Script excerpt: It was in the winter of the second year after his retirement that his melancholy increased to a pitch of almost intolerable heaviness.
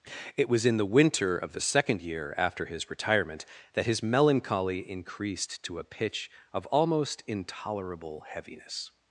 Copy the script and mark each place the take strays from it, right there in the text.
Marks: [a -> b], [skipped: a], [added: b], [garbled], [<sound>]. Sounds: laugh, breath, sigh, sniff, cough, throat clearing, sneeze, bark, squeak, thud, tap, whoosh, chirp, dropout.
It was in the winter of the second year after his retirement that his melancholy increased to a pitch of almost intolerable heaviness.